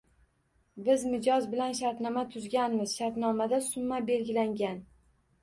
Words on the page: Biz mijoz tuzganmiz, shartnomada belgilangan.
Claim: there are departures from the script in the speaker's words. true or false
true